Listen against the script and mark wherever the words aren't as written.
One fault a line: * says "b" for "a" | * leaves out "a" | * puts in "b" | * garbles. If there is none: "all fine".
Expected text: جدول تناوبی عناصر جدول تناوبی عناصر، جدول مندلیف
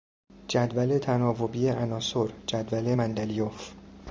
* leaves out "تناوبی عناصر جدول"